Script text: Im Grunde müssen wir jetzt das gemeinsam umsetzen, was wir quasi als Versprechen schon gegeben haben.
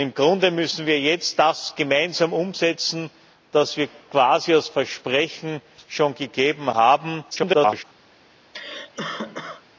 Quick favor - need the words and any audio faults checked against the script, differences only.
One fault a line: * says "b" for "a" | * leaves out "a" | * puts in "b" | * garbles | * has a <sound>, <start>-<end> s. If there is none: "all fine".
* garbles
* has a cough, 8.5-9.6 s